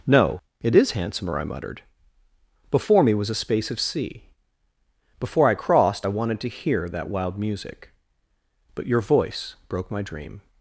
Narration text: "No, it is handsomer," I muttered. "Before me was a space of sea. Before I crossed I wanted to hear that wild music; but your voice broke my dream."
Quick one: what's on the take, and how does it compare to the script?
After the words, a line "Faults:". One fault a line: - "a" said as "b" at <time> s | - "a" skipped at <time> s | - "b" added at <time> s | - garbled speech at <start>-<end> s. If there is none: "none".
"No, it is handsomer," I muttered. "Before me was a space of sea. Before I crossed I wanted to hear that wild music; but your voice broke my dream."
Faults:
none